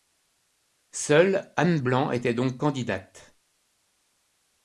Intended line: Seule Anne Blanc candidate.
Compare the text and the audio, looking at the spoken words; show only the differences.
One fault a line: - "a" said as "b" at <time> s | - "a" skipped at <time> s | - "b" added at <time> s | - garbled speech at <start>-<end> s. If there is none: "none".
- "était donc" added at 2.1 s